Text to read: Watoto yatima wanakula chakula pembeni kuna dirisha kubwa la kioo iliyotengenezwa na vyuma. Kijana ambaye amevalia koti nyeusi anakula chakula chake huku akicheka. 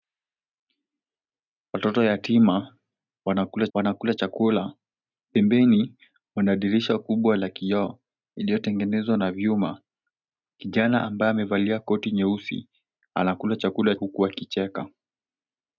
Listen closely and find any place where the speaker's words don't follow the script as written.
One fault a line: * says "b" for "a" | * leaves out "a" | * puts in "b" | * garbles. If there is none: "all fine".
* puts in "wanakula"
* leaves out "chake"